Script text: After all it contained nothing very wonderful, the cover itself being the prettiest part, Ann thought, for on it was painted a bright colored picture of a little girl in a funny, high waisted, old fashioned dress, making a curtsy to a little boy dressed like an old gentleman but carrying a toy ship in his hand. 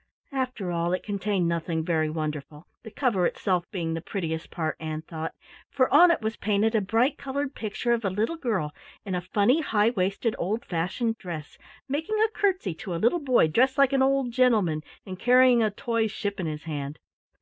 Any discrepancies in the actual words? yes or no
yes